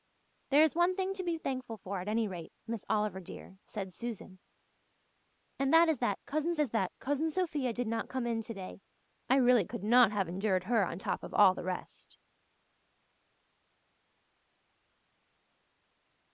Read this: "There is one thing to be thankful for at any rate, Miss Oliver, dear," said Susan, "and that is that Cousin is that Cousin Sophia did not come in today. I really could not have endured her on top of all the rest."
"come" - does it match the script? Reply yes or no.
yes